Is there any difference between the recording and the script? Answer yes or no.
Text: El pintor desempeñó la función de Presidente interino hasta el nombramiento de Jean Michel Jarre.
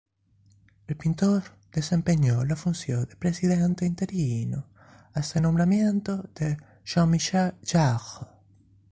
no